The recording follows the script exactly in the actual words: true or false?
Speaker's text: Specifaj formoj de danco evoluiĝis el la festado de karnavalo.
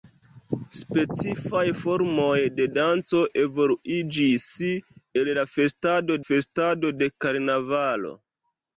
false